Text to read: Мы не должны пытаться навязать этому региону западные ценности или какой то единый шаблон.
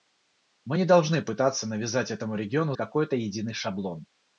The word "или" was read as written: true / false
false